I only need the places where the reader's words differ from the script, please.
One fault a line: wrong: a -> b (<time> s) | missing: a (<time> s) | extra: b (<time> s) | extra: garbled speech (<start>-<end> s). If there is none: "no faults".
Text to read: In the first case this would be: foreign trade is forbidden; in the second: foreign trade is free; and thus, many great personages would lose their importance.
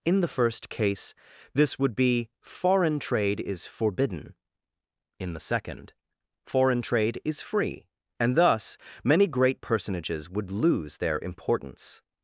no faults